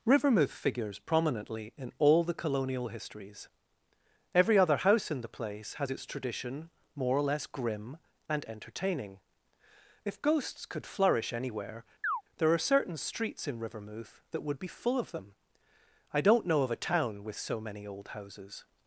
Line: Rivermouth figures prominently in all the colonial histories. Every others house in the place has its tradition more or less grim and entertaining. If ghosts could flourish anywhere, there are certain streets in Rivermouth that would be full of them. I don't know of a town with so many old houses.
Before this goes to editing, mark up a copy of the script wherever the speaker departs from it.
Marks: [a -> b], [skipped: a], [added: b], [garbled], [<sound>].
Rivermouth figures prominently in all the colonial histories. Every [others -> other] house in the place has its tradition more or less grim and entertaining. If ghosts could flourish anywhere, [chirp] there are certain streets in Rivermouth that would be full of them. I don't know of a town with so many old houses.